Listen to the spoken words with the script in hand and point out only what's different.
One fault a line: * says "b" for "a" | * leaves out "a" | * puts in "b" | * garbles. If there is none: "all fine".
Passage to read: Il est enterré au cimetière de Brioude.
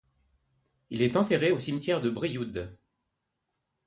all fine